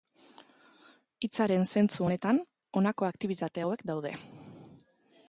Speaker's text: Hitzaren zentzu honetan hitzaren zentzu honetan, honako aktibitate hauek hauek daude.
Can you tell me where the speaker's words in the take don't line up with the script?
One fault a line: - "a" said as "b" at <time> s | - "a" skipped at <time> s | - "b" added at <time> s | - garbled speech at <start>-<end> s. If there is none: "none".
- "hitzaren zentzu honetan" skipped at 2.4 s
- "hauek" skipped at 3.8 s